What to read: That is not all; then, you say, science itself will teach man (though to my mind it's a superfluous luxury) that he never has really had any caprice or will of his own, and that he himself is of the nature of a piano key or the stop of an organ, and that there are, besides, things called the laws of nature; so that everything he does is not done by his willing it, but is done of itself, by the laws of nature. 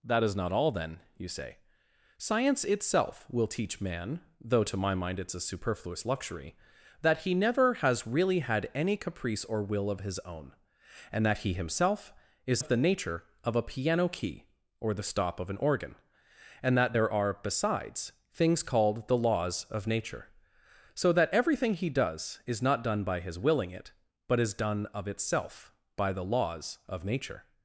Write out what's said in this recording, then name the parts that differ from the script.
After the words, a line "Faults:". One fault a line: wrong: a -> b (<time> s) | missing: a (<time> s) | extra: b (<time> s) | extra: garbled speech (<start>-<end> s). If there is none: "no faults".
That is not all; then, you say, science itself will teach man (though to my mind it's a superfluous luxury) that he never has really had any caprice or will of his own, and that he himself is of the nature of a piano key or the stop of an organ, and that there are, besides, things called the laws of nature; so that everything he does is not done by his willing it, but is done of itself, by the laws of nature.
Faults:
no faults